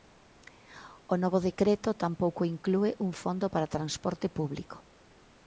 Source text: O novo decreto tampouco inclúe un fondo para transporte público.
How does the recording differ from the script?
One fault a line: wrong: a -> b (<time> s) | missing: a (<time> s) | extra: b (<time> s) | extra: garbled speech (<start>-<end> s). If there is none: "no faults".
no faults